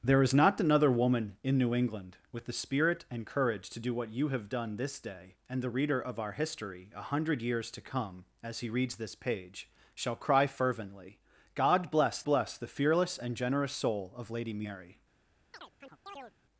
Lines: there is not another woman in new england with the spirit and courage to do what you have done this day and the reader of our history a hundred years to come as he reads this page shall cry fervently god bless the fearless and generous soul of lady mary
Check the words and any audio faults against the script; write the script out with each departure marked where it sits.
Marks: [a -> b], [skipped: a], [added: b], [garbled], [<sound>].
there is not another woman in new england with the spirit and courage to do what you have done this day and the reader of our history a hundred years to come as he reads this page shall cry fervently god bless [added: bless] the fearless and generous soul of lady mary [chirp]